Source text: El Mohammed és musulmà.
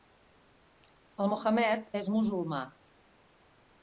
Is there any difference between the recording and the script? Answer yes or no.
no